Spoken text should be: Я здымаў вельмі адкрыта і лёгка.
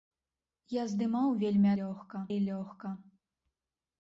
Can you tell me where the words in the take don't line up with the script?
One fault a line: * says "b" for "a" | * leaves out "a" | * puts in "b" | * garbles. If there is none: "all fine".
* says "лёгка" for "адкрыта"